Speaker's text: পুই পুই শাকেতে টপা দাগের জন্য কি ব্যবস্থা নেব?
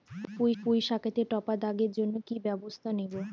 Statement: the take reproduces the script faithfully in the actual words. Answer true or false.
true